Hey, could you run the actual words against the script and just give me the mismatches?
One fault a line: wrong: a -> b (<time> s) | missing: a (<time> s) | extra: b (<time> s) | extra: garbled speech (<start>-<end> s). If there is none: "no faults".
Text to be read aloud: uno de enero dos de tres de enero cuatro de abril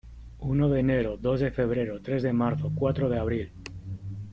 extra: febrero (1.5 s)
wrong: enero -> marzo (2.3 s)